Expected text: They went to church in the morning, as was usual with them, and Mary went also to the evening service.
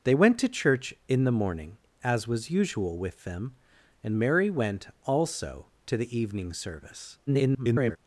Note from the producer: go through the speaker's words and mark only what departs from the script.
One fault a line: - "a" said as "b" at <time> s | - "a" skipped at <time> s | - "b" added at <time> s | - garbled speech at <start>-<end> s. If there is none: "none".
- garbled speech at 7.3-8.0 s